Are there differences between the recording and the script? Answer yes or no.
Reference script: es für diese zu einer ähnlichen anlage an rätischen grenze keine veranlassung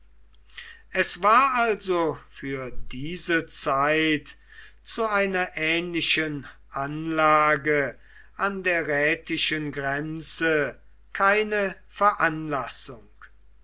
yes